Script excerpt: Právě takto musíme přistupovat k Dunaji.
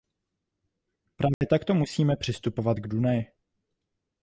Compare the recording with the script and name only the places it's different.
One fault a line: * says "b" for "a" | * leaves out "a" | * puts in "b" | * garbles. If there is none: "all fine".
all fine